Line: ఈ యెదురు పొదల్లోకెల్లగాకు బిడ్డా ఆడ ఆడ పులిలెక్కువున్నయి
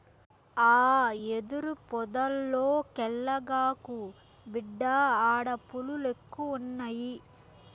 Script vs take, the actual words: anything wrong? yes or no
yes